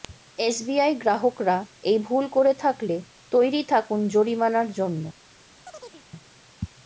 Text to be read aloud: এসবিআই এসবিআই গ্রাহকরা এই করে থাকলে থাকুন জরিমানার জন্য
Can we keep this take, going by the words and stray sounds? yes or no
no